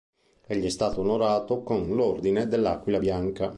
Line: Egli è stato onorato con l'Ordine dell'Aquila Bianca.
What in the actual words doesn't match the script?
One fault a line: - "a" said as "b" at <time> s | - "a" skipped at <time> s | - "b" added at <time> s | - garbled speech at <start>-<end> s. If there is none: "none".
none